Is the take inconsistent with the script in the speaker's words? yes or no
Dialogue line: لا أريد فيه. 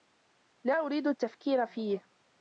yes